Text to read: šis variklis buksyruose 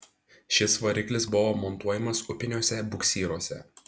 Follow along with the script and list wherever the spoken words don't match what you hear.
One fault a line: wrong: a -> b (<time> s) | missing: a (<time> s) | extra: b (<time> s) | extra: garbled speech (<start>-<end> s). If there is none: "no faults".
extra: buvo montuojamas upiniuose (1.3 s)